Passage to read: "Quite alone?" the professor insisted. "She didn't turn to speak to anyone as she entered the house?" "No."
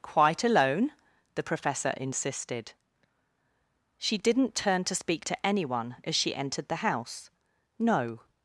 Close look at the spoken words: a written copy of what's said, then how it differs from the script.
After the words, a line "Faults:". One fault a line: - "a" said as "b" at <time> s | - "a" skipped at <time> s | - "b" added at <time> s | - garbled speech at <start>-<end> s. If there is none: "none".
"Quite alone?" the professor insisted. "She didn't turn to speak to anyone as she entered the house?" "No."
Faults:
none